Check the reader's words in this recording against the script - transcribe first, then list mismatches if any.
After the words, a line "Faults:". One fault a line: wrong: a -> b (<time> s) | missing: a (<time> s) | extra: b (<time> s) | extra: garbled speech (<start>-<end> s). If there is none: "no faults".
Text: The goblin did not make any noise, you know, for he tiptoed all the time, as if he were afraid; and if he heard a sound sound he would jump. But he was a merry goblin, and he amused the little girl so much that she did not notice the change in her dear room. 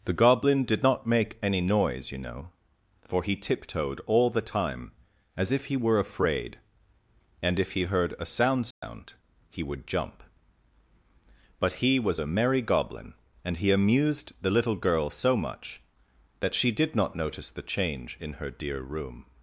The goblin did not make any noise, you know, for he tiptoed all the time, as if he were afraid; and if he heard a sound sound he would jump. But he was a merry goblin, and he amused the little girl so much that she did not notice the change in her dear room.
Faults:
no faults